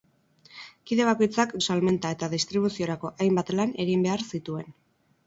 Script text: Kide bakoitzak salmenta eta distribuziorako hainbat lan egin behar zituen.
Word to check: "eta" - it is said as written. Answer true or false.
true